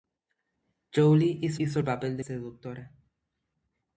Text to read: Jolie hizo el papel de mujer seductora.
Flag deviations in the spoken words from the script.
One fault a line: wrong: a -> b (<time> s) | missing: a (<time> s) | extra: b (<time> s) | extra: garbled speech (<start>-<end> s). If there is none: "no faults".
extra: hizo (1.6 s)
missing: mujer (2.2 s)